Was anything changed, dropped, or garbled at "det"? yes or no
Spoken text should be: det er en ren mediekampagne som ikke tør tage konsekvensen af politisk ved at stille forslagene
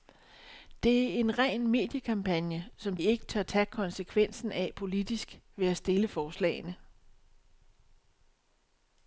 no